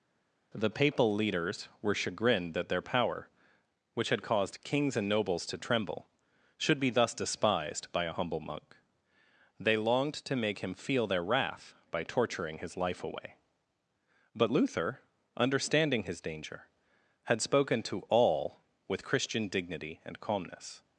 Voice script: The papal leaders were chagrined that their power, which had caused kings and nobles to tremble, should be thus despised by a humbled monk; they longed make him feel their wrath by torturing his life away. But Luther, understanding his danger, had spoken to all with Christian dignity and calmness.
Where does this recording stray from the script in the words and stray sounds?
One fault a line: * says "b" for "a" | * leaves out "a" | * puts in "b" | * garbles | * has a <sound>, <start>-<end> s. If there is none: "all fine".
* says "humble" for "humbled"
* puts in "to"